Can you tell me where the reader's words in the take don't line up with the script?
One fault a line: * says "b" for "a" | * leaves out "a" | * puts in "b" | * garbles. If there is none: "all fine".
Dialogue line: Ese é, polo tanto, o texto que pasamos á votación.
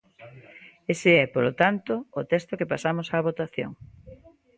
all fine